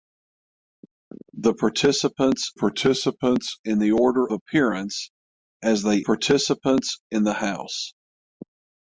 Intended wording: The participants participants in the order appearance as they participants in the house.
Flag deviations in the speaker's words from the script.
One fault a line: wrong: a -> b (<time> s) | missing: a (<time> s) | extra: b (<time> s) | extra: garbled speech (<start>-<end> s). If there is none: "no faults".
no faults